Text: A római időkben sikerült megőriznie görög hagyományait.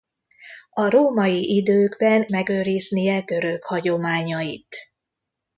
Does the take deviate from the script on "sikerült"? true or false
true